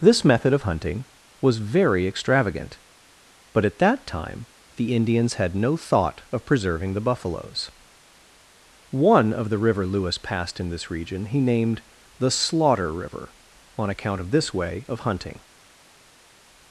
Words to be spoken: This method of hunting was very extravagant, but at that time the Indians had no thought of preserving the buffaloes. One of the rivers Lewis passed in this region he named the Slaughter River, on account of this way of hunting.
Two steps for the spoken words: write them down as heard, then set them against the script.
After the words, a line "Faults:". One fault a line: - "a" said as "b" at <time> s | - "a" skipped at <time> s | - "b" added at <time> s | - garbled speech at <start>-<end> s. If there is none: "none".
This method of hunting was very extravagant, but at that time the Indians had no thought of preserving the buffaloes. One of the river Lewis passed in this region he named the Slaughter River, on account of this way of hunting.
Faults:
- "rivers" said as "river" at 9.6 s